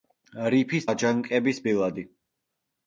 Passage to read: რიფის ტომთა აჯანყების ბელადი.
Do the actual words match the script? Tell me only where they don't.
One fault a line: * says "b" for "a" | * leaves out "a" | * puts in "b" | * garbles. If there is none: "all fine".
* leaves out "ტომთა"